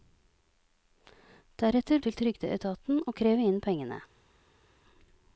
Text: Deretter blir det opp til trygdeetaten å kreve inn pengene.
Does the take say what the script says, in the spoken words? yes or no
no